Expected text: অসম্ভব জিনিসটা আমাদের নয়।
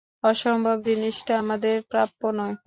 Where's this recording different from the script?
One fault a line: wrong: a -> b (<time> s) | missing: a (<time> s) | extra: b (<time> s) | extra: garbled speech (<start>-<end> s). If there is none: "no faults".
extra: প্রাপ্য (1.9 s)